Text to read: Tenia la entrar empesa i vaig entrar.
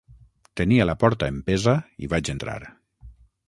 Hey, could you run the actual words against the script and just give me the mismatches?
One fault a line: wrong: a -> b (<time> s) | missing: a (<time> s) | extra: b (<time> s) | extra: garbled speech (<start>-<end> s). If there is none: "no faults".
wrong: entrar -> porta (1.0 s)